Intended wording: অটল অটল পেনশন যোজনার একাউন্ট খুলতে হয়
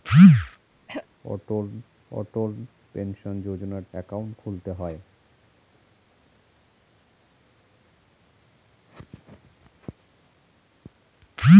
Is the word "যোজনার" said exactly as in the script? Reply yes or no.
yes